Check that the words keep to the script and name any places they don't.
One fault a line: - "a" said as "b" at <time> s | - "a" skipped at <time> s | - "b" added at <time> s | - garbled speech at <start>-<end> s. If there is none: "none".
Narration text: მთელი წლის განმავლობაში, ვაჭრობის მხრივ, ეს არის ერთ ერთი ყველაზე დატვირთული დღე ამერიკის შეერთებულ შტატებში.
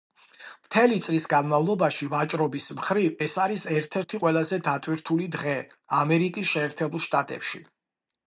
none